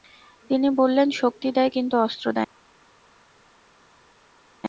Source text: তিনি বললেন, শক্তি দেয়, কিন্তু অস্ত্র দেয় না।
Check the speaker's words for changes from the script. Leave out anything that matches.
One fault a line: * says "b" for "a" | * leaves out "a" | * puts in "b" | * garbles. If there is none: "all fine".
all fine